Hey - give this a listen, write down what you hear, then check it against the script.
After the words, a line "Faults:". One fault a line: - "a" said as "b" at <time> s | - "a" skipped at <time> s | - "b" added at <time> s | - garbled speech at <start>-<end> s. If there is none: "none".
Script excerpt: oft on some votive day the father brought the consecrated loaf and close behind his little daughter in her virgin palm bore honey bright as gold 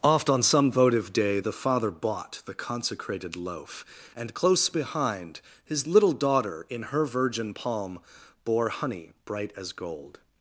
oft on some votive day the father bought the consecrated loaf and close behind his little daughter in her virgin palm bore honey bright as gold
Faults:
- "brought" said as "bought" at 1.9 s